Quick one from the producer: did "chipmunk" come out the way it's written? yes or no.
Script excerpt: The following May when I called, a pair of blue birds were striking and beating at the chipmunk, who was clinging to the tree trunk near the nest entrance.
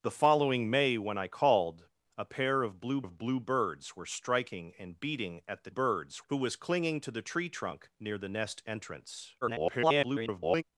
no